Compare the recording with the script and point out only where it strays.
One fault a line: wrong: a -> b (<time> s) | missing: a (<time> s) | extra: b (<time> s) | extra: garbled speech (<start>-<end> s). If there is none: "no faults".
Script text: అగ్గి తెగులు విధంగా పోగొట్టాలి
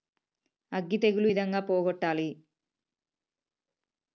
no faults